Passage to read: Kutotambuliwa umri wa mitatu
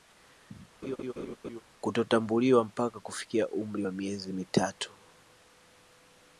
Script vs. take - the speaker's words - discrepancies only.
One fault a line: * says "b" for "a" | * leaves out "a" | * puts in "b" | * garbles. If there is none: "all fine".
* puts in "mpaka kufikia"
* puts in "miezi"